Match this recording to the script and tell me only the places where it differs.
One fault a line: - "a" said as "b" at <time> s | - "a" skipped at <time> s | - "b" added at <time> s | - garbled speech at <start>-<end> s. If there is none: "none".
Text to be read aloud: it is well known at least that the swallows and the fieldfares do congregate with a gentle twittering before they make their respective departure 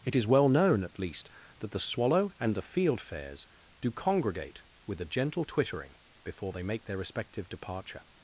- "swallows" said as "swallow" at 1.8 s